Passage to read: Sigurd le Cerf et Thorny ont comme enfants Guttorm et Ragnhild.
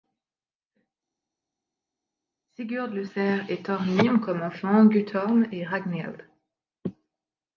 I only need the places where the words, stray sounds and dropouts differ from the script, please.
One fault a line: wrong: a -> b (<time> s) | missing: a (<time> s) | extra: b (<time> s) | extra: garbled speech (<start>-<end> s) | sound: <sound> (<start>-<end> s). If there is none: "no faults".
no faults